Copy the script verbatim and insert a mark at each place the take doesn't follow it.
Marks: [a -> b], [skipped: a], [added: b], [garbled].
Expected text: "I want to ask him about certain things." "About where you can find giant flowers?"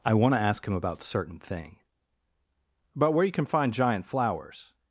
"I want to ask him about certain [things." -> thing] "About where you can find giant flowers?"